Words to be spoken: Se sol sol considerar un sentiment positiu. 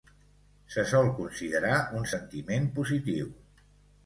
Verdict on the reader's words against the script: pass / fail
fail